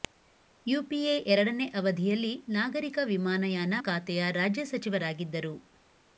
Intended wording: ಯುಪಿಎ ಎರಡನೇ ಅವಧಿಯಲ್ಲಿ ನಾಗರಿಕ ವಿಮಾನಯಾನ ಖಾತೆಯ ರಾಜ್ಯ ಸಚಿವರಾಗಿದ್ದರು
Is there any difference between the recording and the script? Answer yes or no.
no